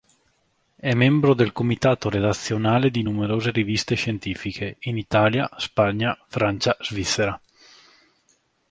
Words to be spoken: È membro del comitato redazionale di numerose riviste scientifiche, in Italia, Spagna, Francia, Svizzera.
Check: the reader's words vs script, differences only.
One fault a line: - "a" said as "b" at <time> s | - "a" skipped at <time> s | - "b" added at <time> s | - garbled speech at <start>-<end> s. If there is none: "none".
none